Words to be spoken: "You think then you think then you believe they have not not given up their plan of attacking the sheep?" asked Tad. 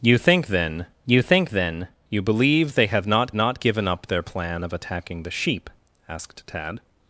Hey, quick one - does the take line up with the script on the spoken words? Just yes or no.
yes